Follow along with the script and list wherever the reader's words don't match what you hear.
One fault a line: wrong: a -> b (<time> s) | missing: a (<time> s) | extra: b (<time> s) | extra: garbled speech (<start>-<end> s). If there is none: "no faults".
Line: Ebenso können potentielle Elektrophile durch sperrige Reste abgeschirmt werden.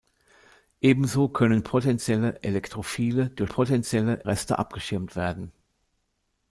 wrong: sperrige -> potentielle (3.5 s)